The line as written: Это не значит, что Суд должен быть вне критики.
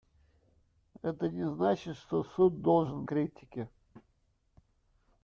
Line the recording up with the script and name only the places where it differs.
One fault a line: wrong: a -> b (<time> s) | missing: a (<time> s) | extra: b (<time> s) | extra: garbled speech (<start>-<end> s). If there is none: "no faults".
missing: быть вне (3.1 s)